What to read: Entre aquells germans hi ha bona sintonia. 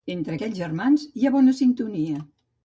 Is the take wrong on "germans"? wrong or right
right